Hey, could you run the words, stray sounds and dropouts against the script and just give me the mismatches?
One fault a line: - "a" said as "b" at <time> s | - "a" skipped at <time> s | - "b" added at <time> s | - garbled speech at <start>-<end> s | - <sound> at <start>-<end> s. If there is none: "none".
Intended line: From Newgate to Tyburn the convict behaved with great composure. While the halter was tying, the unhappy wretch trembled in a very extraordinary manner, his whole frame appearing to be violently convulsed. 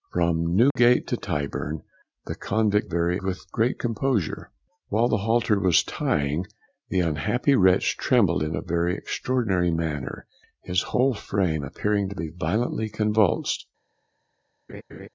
- dropout at 0.7-0.8 s
- "behaved" said as "very" at 2.8 s
- laugh at 14.7-15.1 s